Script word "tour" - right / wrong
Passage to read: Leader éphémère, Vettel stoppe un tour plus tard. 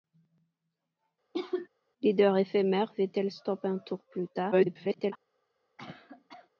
right